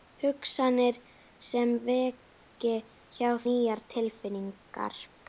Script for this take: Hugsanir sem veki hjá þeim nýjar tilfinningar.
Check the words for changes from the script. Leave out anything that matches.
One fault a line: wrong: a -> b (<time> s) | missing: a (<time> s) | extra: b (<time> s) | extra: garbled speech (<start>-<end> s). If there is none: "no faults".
missing: þeim (3.3 s)